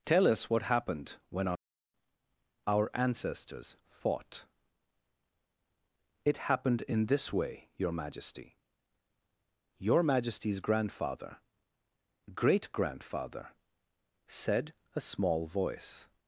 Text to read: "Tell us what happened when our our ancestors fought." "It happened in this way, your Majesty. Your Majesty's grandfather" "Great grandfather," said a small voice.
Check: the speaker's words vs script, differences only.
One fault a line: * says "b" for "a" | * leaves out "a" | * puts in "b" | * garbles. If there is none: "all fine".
all fine